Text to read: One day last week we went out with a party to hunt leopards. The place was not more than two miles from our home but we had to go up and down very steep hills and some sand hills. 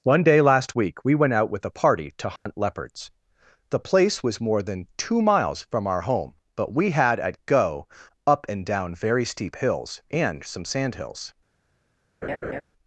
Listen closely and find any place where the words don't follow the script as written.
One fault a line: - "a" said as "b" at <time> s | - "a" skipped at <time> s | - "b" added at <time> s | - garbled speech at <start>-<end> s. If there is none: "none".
- "not" skipped at 4.4 s
- "to" said as "at" at 7.2 s